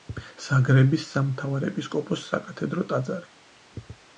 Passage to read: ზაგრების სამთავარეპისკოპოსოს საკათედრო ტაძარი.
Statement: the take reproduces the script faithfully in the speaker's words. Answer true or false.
true